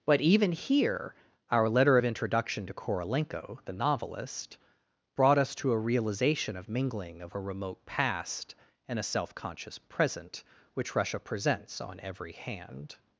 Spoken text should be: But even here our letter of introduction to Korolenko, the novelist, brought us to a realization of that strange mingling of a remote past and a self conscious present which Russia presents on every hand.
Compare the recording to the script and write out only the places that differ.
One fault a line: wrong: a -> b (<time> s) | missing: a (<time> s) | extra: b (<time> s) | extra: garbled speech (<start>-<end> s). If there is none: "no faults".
missing: that strange (6.7 s)